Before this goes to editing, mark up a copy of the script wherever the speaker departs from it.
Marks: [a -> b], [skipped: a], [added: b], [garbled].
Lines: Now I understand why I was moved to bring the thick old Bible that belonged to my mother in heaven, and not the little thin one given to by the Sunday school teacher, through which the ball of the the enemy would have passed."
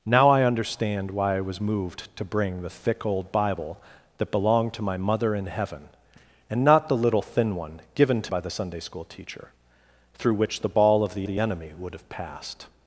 Now I understand why I was moved to bring the thick old Bible that belonged to my mother in heaven, and not the little thin one given to by the Sunday school teacher, through which the ball of the the enemy would have passed."